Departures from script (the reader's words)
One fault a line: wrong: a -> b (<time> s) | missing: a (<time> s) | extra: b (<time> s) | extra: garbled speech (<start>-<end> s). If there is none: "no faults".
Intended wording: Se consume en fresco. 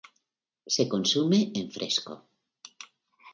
no faults